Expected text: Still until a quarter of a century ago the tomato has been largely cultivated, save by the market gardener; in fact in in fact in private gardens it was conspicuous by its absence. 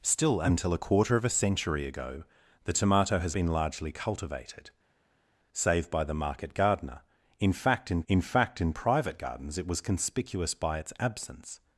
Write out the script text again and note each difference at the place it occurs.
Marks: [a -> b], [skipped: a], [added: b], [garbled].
Still until a quarter of a century ago the tomato has been largely cultivated, save by the market gardener; in fact in in fact in private gardens it was conspicuous by its absence.